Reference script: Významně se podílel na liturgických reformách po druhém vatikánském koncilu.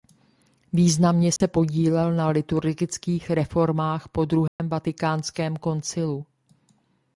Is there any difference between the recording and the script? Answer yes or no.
no